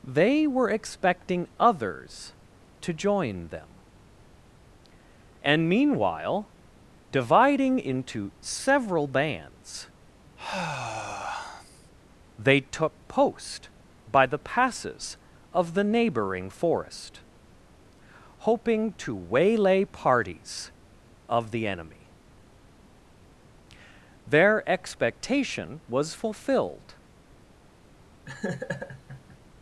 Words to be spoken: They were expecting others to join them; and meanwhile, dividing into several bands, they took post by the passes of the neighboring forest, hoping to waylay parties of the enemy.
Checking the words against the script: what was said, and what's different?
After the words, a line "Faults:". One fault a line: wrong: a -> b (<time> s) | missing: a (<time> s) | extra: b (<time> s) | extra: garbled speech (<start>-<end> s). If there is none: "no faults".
They were expecting others to join them; and meanwhile, dividing into several bands, they took post by the passes of the neighboring forest, hoping to waylay parties of the enemy. Their expectation was fulfilled
Faults:
extra: Their expectation was fulfilled (24.3 s)